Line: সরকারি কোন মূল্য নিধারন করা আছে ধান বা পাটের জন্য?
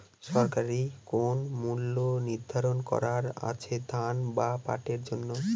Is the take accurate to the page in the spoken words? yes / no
yes